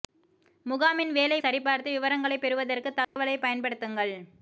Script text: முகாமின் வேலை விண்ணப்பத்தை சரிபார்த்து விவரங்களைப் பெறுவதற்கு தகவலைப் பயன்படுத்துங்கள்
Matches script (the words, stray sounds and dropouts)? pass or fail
fail